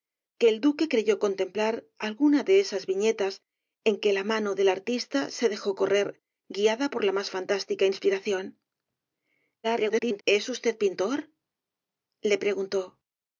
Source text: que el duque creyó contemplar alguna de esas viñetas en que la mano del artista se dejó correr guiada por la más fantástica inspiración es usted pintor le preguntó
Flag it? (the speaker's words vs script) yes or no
yes